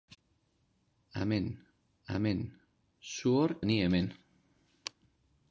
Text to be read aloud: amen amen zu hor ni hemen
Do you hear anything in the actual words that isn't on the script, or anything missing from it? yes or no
no